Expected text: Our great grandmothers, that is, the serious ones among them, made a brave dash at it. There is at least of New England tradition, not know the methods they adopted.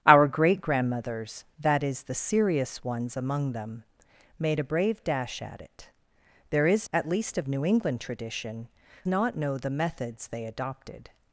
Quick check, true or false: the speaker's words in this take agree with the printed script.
true